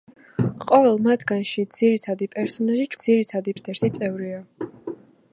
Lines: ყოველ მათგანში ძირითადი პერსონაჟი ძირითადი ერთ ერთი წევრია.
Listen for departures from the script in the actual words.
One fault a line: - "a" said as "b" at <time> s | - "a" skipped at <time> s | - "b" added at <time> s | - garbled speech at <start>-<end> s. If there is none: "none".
none